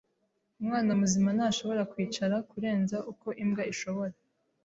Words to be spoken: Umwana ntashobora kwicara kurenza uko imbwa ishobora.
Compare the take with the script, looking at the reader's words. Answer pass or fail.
fail